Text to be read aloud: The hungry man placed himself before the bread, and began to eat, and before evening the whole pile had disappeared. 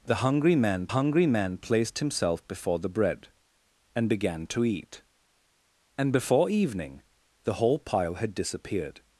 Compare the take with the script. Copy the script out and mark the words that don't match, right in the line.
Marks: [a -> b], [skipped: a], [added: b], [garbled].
The hungry man [added: hungry man] placed himself before the bread, and began to eat, and before evening the whole pile had disappeared.